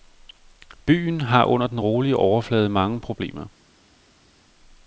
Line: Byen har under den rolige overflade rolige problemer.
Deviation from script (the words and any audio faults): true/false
true